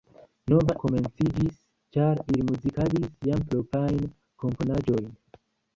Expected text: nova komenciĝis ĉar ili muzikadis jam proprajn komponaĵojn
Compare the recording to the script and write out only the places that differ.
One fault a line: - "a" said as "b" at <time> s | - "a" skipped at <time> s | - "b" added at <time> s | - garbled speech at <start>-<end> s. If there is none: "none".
none